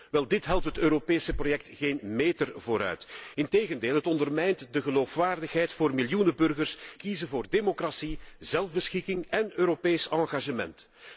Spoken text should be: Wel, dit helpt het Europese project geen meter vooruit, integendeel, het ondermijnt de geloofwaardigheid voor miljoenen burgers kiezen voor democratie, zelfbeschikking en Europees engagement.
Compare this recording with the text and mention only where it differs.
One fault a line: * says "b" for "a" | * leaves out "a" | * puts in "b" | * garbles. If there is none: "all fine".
all fine